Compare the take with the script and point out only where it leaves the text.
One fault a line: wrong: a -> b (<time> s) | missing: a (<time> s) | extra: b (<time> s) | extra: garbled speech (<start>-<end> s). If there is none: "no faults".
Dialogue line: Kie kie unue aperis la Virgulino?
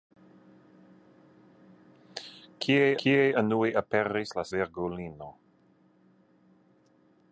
no faults